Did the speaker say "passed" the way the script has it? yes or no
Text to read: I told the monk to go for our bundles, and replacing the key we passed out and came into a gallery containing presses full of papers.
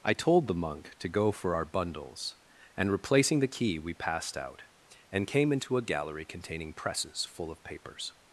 yes